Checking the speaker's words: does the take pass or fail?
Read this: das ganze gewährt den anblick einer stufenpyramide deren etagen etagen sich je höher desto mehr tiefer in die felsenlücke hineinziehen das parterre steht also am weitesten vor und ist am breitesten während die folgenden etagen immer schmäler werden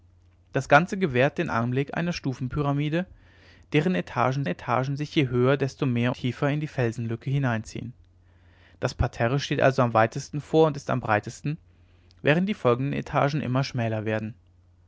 pass